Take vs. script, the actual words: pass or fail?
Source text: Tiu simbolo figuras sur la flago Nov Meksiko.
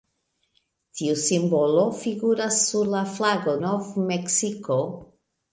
pass